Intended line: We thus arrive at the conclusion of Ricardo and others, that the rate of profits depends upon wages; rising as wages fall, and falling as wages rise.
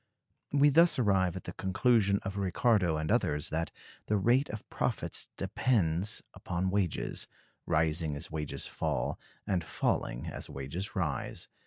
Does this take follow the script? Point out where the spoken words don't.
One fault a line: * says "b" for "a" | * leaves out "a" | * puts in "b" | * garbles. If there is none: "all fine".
all fine